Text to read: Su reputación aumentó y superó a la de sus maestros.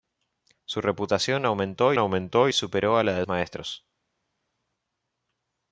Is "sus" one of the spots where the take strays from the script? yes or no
yes